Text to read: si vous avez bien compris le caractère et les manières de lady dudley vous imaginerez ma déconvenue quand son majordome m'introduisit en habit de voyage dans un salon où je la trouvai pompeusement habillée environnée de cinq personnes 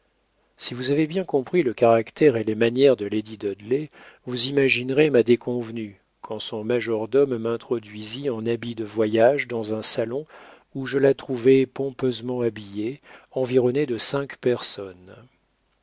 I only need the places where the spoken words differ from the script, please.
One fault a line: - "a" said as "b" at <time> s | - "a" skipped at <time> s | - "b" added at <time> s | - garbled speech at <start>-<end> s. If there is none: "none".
none